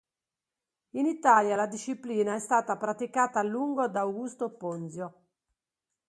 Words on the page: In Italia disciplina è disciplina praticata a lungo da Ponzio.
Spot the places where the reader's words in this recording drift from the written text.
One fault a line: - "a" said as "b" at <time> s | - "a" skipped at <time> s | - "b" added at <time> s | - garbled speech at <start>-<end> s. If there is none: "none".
- "la" added at 1.6 s
- "disciplina" said as "stata" at 2.4 s
- "Augusto" added at 4.0 s